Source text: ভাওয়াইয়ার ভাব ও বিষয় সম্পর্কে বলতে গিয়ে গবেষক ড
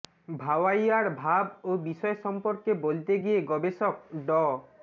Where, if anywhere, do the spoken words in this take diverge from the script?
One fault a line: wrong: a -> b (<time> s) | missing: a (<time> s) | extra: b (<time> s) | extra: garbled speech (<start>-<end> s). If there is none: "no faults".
no faults